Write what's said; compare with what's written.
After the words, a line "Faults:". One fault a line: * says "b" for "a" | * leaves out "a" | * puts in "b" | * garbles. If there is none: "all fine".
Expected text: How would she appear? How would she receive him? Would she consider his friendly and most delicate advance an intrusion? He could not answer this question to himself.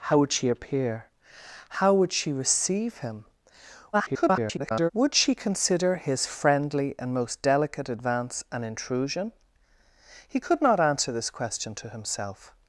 How would she appear? How would she receive him? [garbled] Would she consider his friendly and most delicate advance an intrusion? He could not answer this question to himself.
Faults:
* garbles